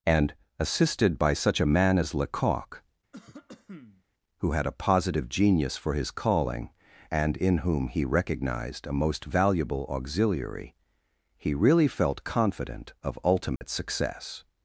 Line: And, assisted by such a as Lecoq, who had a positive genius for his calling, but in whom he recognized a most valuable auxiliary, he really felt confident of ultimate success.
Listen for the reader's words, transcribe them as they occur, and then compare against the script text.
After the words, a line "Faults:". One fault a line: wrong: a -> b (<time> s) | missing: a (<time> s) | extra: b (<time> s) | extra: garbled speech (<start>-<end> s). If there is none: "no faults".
And, assisted by such a man as Lecoq, who had a positive genius for his calling, and in whom he recognized a most valuable auxiliary, he really felt confident of ultimate success.
Faults:
extra: man (1.6 s)
wrong: but -> and (7.1 s)